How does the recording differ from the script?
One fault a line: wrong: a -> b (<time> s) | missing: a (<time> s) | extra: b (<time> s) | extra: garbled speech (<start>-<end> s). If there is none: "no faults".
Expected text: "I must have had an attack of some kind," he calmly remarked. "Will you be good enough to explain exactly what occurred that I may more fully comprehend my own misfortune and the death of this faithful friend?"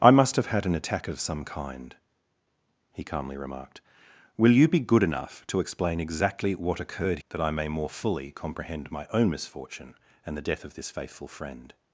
no faults